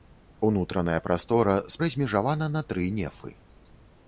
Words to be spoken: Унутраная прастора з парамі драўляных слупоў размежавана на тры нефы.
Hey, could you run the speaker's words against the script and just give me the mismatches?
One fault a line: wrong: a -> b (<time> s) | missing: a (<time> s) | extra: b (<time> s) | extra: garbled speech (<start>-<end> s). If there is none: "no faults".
missing: парамі драўляных слупоў (1.8 s)